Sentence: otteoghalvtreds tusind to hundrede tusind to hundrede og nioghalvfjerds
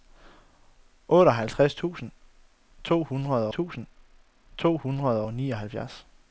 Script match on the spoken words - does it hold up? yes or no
yes